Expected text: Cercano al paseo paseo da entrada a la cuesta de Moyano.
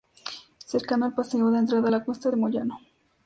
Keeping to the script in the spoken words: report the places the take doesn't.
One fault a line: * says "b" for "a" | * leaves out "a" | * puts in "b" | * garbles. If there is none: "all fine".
* leaves out "paseo"